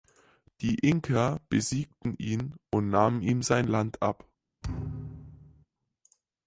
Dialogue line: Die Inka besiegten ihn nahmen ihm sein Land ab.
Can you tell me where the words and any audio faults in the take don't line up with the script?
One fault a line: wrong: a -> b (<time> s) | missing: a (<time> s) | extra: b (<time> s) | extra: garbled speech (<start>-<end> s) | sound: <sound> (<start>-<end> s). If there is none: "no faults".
extra: und (2.7 s)
sound: thud (4.6-5.7 s)